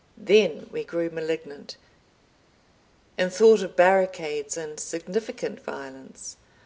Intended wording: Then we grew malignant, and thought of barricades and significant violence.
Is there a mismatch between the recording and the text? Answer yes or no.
no